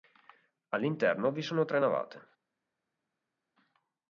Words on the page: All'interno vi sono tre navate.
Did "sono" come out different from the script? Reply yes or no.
no